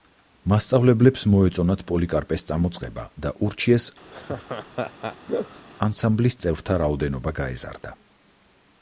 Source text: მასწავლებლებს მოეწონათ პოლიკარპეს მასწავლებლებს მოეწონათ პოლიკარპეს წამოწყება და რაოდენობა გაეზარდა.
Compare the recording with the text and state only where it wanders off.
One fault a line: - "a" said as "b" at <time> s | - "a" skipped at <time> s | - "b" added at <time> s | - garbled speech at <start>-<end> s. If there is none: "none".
- "მასწავლებლებს მოეწონათ პოლიკარპეს წამოწყება და" said as "წამოწყება და ურჩიეს ანსამბლის წევრთა" at 2.5 s